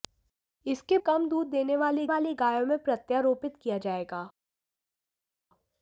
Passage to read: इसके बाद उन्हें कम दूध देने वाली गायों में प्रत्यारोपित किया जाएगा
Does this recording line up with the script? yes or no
no